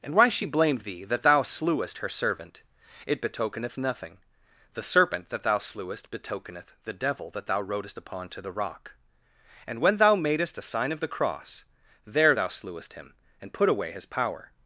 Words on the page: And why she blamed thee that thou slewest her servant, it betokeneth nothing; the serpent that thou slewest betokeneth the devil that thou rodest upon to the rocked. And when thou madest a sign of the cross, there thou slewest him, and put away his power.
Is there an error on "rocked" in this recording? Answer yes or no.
yes